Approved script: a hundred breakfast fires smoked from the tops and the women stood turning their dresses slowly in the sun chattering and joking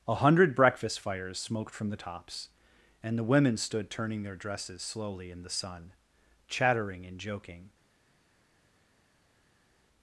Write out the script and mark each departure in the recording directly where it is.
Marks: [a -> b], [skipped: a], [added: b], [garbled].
a hundred breakfast fires smoked from the tops and the women stood turning their dresses slowly in the sun chattering and joking